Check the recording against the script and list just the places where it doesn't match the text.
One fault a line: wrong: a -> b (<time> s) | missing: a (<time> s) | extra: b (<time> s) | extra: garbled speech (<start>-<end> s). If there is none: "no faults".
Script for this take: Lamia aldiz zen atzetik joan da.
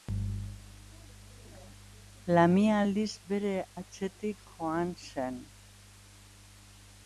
wrong: zen -> bere (3.3 s)
wrong: da -> zen (5.1 s)